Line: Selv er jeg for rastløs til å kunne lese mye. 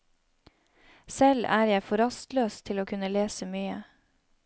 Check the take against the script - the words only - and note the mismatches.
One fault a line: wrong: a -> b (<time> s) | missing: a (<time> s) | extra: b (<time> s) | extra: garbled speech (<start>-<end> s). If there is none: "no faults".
no faults